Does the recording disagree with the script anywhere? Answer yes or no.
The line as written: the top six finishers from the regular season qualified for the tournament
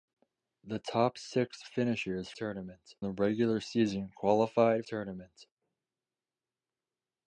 yes